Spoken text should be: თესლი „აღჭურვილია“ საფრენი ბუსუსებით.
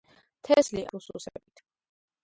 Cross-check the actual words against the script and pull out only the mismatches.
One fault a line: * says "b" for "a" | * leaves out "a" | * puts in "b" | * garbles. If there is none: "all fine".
* leaves out "აღჭურვილია საფრენი"